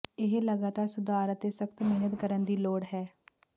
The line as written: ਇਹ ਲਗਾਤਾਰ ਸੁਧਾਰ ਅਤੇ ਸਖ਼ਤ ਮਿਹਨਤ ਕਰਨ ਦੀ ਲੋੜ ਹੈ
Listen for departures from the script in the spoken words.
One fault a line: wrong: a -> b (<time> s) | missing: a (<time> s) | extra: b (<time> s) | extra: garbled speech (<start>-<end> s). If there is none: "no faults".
no faults